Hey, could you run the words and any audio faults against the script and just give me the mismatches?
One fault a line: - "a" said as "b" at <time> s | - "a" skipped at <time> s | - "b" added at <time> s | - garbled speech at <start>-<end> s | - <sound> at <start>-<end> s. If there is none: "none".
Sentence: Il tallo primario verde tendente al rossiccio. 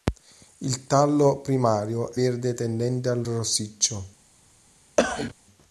- cough at 5.0-5.3 s